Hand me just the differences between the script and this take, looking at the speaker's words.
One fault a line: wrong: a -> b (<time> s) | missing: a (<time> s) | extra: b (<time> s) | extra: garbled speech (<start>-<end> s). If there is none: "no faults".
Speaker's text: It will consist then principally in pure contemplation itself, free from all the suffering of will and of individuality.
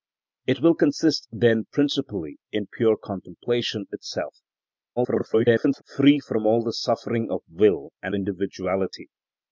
extra: garbled speech (5.0-5.8 s)
missing: of (8.1 s)